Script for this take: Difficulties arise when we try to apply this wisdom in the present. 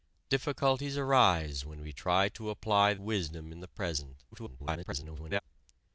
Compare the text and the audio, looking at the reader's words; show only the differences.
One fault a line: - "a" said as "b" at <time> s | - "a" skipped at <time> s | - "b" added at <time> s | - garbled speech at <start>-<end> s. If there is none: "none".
- "this" skipped at 3.0 s
- garbled speech at 4.3-5.4 s